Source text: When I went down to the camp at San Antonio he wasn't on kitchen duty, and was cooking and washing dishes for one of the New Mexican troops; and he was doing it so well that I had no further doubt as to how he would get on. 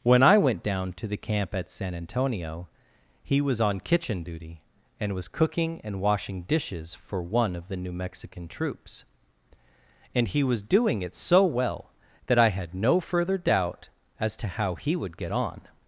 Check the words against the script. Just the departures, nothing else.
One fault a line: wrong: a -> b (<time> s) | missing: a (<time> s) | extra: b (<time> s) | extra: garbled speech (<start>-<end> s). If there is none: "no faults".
wrong: wasn't -> was (3.4 s)